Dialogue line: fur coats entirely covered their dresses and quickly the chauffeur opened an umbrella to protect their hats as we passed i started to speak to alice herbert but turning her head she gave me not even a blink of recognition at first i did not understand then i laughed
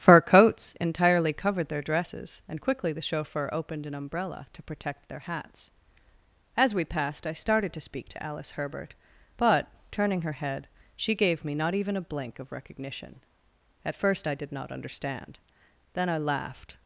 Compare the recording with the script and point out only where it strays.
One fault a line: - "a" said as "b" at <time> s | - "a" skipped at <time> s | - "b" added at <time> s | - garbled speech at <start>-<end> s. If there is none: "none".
none